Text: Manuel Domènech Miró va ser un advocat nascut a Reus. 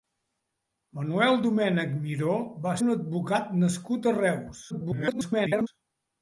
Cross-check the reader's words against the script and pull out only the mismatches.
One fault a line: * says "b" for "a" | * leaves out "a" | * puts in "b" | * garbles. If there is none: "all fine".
* leaves out "ser"
* garbles